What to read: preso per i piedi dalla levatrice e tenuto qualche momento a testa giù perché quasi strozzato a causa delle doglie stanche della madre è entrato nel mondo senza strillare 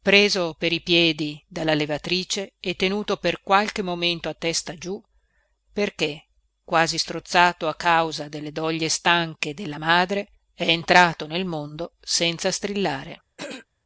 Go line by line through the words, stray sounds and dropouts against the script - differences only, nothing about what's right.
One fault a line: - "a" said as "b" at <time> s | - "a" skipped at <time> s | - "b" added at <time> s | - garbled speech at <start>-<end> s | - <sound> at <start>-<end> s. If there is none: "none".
- "per" added at 3.2 s
- throat clearing at 13.4-13.7 s